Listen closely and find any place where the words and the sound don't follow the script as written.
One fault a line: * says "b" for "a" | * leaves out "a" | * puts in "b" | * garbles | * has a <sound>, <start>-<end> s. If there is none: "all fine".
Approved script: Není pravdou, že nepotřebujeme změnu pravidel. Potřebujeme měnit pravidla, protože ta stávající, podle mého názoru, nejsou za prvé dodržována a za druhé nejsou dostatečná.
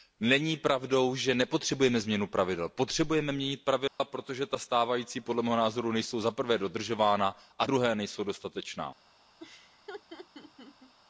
* has a dropout, 3.9-4.0 s
* leaves out "za"
* has a laugh, 9.4-10.9 s